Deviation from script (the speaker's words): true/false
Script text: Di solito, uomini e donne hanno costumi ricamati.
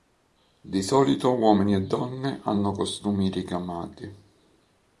false